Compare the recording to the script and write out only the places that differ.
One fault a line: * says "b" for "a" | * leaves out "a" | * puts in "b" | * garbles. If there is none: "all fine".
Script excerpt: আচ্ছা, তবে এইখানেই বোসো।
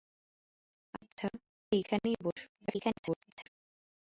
* leaves out "তবে"
* garbles